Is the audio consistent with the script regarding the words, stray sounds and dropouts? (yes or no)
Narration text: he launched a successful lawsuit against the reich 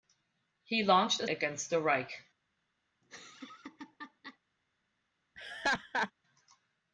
no